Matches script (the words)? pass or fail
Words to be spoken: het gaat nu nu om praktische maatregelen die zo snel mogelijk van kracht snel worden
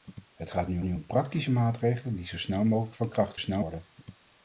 pass